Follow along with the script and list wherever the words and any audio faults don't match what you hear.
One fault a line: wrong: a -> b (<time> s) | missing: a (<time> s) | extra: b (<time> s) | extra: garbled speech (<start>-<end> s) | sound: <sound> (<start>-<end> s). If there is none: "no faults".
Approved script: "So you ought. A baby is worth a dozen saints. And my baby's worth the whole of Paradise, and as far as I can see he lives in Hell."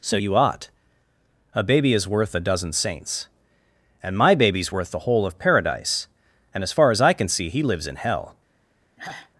sound: sigh (9.0-9.3 s)